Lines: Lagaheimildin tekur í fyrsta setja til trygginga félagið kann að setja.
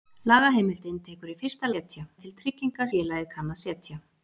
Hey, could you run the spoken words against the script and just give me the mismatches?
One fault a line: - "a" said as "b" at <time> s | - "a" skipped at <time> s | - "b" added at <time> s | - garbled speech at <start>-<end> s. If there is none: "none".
none